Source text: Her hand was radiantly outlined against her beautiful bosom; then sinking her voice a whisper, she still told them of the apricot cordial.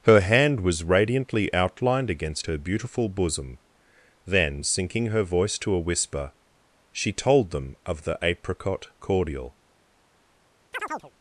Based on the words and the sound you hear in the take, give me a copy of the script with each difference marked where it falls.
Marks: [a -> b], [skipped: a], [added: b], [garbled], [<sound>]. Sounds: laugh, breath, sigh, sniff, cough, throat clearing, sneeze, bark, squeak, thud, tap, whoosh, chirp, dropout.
Her hand was radiantly outlined against her beautiful bosom; then sinking her voice [added: to] a whisper, she [skipped: still] told them of the apricot cordial. [chirp]